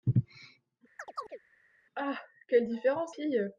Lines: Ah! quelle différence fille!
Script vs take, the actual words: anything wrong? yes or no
no